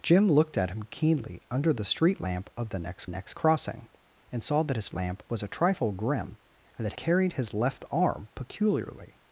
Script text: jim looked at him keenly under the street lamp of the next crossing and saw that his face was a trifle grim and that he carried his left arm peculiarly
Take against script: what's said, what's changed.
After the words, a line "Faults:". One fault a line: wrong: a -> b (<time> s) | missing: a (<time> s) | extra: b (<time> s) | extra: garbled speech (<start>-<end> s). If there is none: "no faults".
jim looked at him keenly under the street lamp of the next next crossing and saw that his lamp was a trifle grim and that carried his left arm peculiarly
Faults:
extra: next (3.1 s)
wrong: face -> lamp (4.9 s)
missing: he (6.9 s)